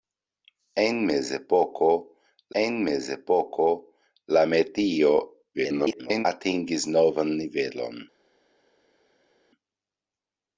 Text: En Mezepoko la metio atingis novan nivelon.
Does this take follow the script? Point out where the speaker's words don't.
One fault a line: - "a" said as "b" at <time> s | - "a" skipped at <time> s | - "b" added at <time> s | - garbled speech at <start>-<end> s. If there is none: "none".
- "en Mezepoko" added at 2.6 s
- garbled speech at 5.5-6.3 s